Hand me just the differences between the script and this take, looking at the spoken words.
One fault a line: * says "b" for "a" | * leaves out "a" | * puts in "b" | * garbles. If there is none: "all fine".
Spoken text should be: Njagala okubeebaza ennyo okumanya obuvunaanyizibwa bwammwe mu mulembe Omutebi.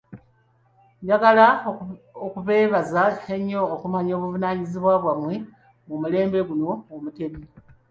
* puts in "guno"